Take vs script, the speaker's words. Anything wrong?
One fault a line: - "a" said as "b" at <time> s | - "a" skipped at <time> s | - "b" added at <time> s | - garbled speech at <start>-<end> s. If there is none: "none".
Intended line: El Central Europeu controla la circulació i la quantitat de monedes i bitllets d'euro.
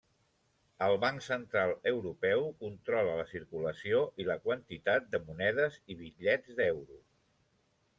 - "Banc" added at 1.0 s